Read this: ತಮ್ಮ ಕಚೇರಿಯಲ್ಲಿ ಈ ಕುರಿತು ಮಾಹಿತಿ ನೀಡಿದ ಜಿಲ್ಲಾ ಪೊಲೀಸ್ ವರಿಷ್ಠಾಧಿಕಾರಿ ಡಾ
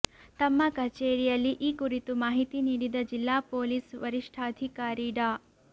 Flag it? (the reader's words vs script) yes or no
no